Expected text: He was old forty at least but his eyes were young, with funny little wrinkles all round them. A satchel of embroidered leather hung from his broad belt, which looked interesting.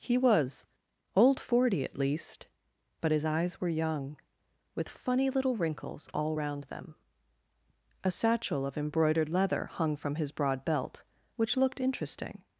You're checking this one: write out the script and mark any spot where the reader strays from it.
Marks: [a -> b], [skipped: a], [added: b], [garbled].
He was old forty at least but his eyes were young, with funny little wrinkles all round them. A satchel of embroidered leather hung from his broad belt, which looked interesting.